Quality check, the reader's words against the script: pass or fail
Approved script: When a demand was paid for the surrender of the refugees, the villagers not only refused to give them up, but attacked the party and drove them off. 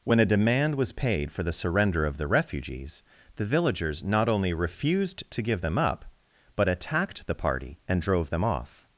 pass